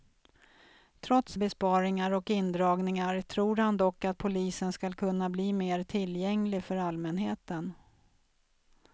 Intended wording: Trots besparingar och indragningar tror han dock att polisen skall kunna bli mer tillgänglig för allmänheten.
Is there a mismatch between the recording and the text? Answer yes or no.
no